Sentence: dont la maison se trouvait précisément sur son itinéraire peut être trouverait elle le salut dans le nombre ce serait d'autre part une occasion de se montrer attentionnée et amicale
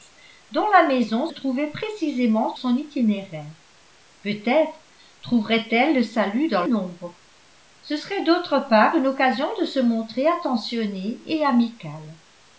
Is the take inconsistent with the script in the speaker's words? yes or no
yes